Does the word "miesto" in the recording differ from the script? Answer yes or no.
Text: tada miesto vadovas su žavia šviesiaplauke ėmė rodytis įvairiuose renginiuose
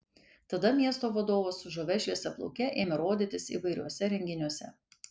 no